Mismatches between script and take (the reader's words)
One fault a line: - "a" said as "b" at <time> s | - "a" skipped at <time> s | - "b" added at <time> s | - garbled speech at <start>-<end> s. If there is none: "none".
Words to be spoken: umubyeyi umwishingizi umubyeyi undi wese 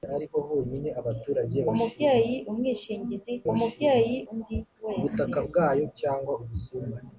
none